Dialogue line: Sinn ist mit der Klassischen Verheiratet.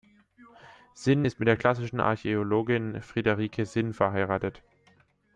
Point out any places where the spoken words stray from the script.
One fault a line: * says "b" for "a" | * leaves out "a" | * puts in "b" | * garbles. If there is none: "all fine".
* puts in "Archäologin Friederike Sinn"